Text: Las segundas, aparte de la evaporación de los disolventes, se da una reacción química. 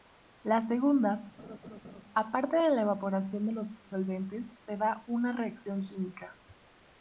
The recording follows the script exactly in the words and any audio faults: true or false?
false